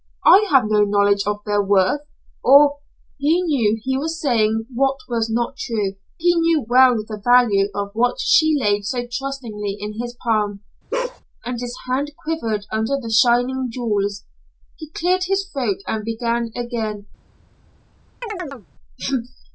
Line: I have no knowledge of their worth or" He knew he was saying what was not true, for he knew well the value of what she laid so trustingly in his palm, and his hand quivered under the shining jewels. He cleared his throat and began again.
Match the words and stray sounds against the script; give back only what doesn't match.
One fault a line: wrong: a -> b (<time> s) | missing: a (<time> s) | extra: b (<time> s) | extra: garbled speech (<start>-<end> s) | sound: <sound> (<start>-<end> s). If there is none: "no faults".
missing: for (5.9 s)
sound: bark (10.9-11.2 s)
sound: chirp (18.2-18.7 s)